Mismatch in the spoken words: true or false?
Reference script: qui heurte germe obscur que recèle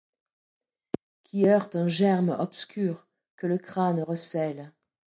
true